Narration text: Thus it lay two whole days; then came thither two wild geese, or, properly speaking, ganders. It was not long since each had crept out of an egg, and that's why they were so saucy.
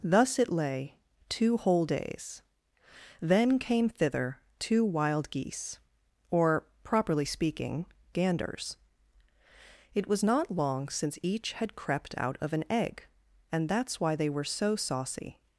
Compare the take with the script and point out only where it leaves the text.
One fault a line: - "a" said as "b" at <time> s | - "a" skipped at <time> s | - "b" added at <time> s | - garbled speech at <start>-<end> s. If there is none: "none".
none